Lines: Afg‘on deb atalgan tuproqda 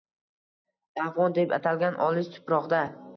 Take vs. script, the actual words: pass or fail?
fail